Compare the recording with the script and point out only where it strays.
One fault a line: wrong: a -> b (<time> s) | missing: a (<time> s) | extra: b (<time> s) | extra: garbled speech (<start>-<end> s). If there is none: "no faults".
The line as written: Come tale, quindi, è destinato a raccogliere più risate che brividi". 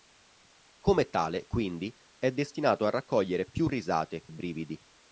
missing: che (4.3 s)